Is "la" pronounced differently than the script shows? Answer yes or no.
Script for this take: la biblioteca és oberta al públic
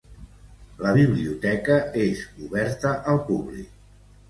no